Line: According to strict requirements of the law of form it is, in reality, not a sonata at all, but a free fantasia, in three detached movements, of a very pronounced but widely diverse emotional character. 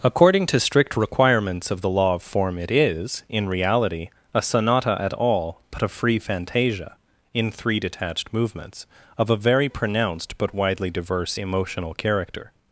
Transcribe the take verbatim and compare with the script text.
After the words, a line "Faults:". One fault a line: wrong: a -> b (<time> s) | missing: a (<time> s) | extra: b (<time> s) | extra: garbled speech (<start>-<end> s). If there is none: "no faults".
According to strict requirements of the law of form it is, in reality, a sonata at all, but a free fantasia, in three detached movements, of a very pronounced but widely diverse emotional character.
Faults:
missing: not (4.1 s)